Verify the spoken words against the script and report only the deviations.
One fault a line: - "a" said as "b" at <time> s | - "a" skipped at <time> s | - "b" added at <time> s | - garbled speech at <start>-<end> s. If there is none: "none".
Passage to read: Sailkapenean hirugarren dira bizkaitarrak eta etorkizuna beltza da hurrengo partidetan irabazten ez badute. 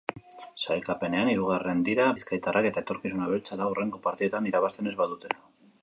none